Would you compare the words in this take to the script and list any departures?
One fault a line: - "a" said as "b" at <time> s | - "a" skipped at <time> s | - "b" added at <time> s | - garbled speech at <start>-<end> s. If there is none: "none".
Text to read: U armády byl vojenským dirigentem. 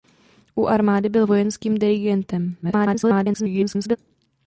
- garbled speech at 2.6-4.0 s